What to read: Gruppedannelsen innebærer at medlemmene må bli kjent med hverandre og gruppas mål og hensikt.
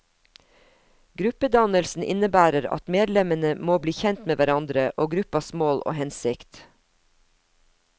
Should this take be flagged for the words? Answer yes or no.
no